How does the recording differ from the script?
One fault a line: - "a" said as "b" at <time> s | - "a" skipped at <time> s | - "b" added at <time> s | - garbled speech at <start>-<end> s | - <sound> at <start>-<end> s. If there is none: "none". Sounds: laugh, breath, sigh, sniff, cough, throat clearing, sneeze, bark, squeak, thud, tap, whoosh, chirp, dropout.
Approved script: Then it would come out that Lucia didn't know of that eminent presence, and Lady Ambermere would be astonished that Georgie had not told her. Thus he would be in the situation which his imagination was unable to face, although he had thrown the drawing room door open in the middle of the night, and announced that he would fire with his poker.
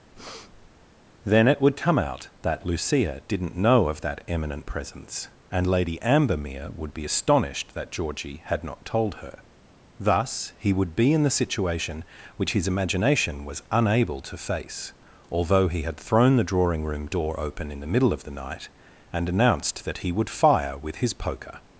- breath at 0.1-0.7 s